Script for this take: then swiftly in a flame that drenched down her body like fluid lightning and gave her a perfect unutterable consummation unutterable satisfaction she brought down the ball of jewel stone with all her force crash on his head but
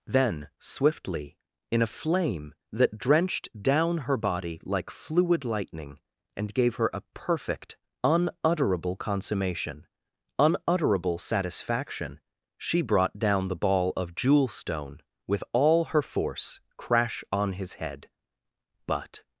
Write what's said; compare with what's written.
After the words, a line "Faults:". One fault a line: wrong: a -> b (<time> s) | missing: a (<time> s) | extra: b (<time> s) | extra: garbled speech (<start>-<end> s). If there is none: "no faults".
then swiftly in a flame that drenched down her body like fluid lightning and gave her a perfect unutterable consummation unutterable satisfaction she brought down the ball of jewel stone with all her force crash on his head but
Faults:
no faults